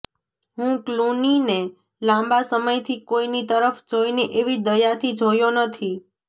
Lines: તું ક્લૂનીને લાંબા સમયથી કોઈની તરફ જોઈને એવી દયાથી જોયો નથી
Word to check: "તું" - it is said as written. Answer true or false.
false